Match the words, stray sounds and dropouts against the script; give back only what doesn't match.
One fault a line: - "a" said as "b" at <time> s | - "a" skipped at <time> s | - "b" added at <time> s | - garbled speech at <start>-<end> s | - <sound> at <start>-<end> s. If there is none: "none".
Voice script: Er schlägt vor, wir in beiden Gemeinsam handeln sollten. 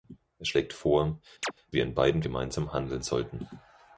- chirp at 1.4-1.5 s